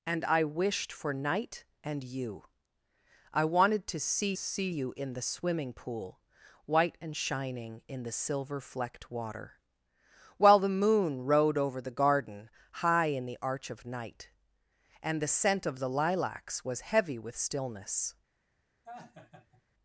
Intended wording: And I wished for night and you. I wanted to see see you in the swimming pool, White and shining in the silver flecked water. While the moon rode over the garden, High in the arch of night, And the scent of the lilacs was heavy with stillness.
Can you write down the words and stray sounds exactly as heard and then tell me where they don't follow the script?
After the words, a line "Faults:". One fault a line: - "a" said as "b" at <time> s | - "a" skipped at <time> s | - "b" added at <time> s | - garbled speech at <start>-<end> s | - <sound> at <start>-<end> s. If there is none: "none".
And I wished for night and you. I wanted to see see you in the swimming pool, White and shining in the silver flecked water. While the moon rode over the garden, High in the arch of night, And the scent of the lilacs was heavy with stillness.
Faults:
- laugh at 18.8-19.6 s